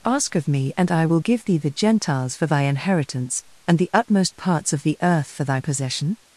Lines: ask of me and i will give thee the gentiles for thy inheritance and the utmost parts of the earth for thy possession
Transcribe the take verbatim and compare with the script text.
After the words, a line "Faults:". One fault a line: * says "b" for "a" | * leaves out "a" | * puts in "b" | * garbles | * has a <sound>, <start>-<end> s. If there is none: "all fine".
ask of me and i will give thee the gentiles for thy inheritance and the utmost parts of the earth for thy possession
Faults:
all fine